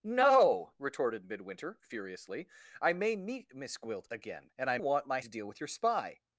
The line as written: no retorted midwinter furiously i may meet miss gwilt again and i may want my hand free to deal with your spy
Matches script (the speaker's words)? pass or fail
fail